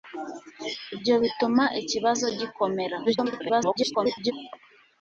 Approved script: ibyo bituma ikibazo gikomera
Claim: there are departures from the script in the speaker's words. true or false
true